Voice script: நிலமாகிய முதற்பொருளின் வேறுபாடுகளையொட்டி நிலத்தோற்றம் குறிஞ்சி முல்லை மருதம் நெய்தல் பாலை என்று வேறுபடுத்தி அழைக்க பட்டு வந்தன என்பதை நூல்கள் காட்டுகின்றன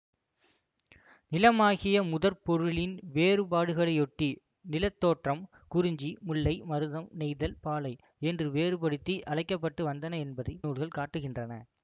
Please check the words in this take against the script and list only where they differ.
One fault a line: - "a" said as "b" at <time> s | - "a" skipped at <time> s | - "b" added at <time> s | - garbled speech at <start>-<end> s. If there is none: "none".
none